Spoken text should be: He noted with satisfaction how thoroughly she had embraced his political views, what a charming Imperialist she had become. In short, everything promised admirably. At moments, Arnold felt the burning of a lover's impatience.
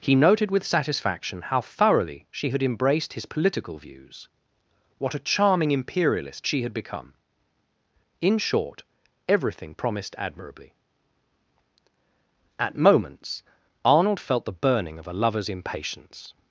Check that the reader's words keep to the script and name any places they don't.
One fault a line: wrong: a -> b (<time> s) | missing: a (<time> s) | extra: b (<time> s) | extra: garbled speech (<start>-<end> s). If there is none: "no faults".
no faults